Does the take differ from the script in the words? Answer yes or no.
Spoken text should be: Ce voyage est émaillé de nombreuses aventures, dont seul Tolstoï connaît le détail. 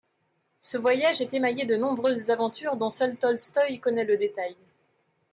no